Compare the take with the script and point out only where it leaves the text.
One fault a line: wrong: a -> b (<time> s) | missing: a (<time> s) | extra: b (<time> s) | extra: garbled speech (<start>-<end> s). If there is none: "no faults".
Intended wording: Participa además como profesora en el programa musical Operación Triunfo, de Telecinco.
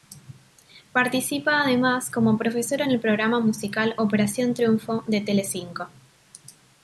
no faults